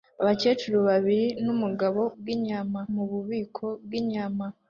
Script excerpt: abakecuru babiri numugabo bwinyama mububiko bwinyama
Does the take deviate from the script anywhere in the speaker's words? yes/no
no